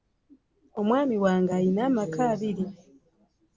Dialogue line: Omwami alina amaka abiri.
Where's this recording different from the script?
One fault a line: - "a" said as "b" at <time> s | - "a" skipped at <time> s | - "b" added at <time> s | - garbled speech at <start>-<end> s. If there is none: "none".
- "wange" added at 1.2 s